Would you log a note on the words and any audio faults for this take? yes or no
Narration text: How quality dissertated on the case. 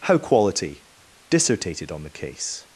no